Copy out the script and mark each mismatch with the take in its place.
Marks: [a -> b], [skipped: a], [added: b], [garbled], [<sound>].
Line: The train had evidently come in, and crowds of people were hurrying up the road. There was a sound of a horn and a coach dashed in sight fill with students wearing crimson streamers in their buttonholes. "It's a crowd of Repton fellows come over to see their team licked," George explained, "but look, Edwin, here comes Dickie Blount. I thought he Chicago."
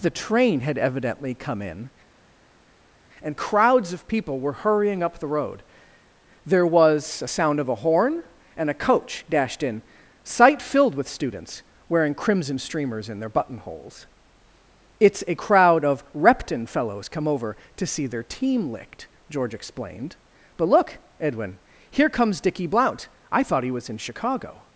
The train had evidently come in, and crowds of people were hurrying up the road. There was a sound of a horn and a coach dashed in sight [fill -> filled] with students wearing crimson streamers in their buttonholes. "It's a crowd of Repton fellows come over to see their team licked," George explained, "but look, Edwin, here comes Dickie Blount. I thought he [added: was in] Chicago."